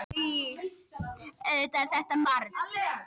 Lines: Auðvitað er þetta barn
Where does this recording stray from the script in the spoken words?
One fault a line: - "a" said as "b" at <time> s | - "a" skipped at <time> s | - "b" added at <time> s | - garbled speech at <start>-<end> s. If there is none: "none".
none